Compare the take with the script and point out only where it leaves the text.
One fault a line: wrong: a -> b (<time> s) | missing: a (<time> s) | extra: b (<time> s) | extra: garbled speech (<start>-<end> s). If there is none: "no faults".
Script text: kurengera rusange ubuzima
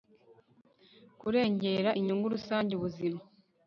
extra: inyungu (2.0 s)